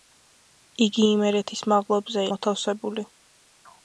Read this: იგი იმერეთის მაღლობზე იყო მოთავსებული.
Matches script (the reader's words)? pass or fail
fail